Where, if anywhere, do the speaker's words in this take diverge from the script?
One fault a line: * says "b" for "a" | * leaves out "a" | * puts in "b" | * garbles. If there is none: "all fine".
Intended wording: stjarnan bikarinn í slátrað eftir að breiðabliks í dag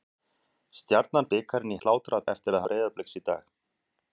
all fine